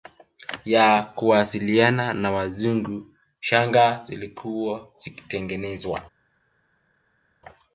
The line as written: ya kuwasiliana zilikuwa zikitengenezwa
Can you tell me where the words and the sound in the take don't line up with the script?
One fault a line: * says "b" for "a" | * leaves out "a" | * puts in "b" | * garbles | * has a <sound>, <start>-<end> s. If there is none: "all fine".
* puts in "na Wazungu shanga"